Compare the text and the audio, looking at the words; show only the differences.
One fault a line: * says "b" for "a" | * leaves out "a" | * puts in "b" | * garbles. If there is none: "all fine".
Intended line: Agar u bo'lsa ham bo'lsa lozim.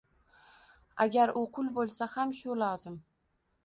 * puts in "qul"
* says "shu" for "bo'lsa"